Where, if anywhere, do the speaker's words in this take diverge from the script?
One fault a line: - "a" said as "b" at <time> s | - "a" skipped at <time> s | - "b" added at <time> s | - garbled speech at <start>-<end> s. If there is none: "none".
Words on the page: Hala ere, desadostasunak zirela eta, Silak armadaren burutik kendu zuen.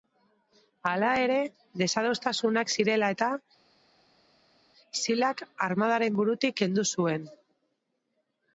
none